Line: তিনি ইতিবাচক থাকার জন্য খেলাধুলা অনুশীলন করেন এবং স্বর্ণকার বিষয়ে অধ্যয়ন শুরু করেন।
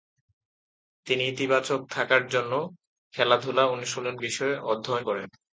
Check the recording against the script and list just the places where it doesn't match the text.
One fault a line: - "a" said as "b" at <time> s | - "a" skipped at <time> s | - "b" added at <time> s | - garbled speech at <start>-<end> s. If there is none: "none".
- "করেন এবং স্বর্ণকার" skipped at 4.2 s
- "শুরু" skipped at 5.0 s